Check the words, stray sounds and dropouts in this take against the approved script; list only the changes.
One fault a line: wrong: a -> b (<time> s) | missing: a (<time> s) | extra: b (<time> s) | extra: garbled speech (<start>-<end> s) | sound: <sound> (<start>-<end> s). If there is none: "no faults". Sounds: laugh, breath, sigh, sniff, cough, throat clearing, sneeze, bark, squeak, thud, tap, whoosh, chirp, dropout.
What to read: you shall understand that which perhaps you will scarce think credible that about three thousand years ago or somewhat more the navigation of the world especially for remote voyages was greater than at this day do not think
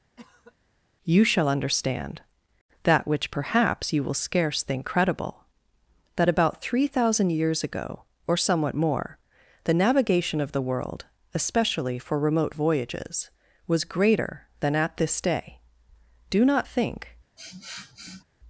sound: cough (0.2-0.6 s)
sound: sniff (17.4-18.2 s)